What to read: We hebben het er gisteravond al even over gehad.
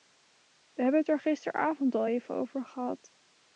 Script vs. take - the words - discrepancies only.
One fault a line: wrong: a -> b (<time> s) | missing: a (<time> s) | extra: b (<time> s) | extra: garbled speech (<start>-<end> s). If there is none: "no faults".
no faults